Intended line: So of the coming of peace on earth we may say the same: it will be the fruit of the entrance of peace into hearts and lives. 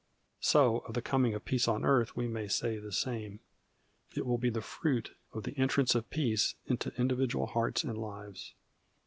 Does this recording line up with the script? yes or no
no